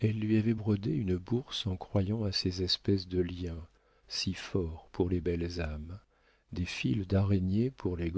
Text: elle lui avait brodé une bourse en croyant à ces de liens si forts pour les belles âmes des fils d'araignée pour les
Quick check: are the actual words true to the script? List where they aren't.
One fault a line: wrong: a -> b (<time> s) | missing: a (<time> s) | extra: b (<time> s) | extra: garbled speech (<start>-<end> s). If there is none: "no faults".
extra: espèces (2.6 s)